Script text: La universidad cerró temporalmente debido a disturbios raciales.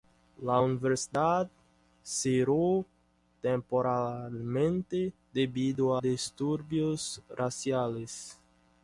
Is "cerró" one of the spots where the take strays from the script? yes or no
no